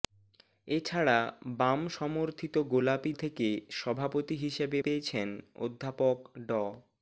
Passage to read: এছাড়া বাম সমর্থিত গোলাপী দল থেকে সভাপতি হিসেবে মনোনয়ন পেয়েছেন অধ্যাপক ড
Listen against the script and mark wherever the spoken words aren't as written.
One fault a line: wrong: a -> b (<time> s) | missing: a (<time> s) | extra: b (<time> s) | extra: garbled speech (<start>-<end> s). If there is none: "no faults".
missing: দল (3.1 s)
missing: মনোনয়ন (4.8 s)